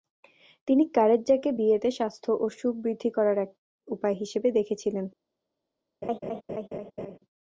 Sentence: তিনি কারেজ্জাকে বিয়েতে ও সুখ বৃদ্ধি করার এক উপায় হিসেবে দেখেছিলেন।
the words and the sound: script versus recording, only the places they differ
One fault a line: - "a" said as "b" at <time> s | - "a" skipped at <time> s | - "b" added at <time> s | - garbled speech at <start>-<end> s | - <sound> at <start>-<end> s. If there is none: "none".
- "স্বাস্থ্য" added at 2.0 s
- laugh at 6.0-7.2 s